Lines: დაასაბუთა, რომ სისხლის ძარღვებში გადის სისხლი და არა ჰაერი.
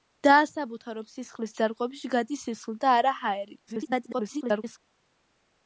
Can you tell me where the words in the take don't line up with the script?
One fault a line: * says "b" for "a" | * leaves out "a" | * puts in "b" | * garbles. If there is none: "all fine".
* garbles